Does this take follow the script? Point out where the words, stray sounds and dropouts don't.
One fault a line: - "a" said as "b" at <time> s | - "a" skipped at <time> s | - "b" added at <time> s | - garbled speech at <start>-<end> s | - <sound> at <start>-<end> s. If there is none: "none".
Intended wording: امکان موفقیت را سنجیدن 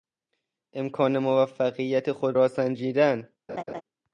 - "خود" added at 2.1 s
- laugh at 3.5-3.8 s